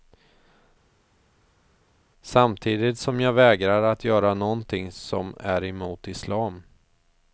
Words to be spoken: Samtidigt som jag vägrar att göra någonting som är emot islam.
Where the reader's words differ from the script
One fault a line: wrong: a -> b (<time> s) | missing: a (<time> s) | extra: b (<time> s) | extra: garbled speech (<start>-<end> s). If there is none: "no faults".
no faults